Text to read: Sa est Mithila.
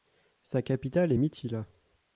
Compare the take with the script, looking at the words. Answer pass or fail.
fail